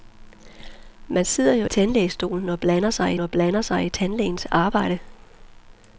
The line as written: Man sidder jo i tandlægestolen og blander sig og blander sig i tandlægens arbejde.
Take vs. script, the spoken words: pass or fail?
pass